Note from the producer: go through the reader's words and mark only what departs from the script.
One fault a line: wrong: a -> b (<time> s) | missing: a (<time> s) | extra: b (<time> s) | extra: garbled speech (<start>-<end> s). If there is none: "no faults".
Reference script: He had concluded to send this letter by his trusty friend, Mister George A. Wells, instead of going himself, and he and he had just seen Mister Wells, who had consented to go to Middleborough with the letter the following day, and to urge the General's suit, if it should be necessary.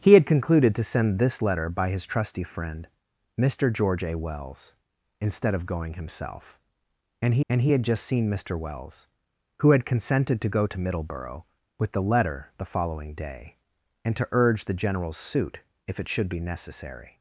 no faults